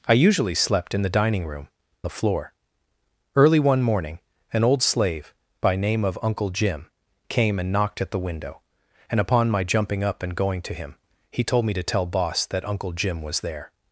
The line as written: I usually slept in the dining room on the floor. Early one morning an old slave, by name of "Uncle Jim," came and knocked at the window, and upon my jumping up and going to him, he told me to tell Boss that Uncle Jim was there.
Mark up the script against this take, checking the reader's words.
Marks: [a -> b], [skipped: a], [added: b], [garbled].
I usually slept in the dining room [skipped: on] the floor. Early one morning an old slave, by name of "Uncle Jim," came and knocked at the window, and upon my jumping up and going to him, he told me to tell Boss that Uncle Jim was there.